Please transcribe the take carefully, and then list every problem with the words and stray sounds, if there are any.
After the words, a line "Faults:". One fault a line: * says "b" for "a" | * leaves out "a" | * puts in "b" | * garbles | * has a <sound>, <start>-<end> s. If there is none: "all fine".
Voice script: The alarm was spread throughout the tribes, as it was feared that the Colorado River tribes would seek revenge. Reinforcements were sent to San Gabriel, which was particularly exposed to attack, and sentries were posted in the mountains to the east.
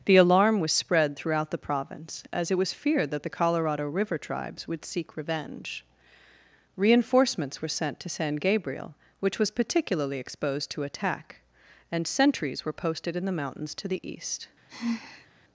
The alarm was spread throughout the province, as it was feared that the Colorado River tribes would seek revenge. Reinforcements were sent to San Gabriel, which was particularly exposed to attack, and sentries were posted in the mountains to the east.
Faults:
* says "province" for "tribes"
* has a sigh, 14.7-15.3 s